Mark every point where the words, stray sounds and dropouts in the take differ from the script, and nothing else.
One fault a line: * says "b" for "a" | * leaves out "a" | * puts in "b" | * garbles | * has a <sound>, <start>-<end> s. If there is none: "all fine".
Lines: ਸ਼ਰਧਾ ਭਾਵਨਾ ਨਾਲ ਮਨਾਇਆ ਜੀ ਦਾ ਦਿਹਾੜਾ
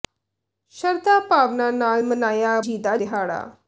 all fine